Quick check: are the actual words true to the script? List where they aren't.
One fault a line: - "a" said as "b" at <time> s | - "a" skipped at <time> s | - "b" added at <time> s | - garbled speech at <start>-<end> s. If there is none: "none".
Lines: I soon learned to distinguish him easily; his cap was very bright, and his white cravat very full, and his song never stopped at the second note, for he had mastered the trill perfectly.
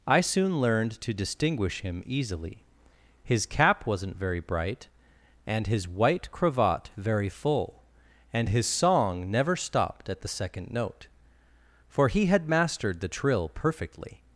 - "was" said as "wasn't" at 3.8 s